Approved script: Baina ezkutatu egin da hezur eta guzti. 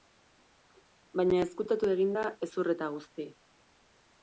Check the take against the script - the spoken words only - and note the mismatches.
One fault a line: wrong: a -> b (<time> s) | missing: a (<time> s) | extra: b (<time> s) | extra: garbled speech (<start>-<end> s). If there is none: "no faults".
no faults